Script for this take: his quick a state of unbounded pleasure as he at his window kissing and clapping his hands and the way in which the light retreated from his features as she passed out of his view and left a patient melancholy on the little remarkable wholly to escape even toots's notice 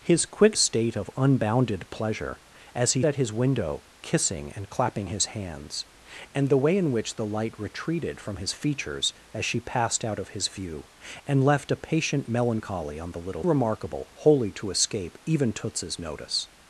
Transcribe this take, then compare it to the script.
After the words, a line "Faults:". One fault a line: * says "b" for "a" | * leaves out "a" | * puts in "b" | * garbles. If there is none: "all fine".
his quick a state of unbounded pleasure as he at his window kissing and clapping his hands and the way in which the light retreated from his features as she passed out of his view and left a patient melancholy on the little remarkable wholly to escape even toots's notice
Faults:
all fine